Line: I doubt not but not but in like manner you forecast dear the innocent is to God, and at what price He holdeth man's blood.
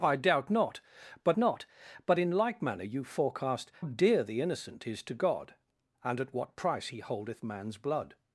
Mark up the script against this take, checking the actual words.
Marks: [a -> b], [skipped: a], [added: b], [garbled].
I doubt not but not but in like manner you forecast dear the innocent is to God, and at what price He holdeth man's blood.